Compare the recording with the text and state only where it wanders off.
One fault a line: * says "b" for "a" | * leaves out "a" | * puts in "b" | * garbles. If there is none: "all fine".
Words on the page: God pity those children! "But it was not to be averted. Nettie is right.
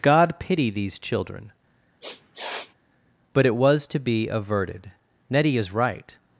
* says "these" for "those"
* leaves out "not"